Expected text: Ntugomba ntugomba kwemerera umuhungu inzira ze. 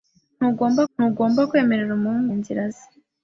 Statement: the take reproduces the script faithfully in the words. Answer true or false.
true